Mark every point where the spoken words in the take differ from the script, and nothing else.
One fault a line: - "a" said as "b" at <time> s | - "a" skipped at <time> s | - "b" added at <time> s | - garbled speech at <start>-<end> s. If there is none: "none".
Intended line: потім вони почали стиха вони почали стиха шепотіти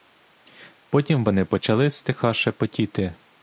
- "вони почали стиха" skipped at 2.3 s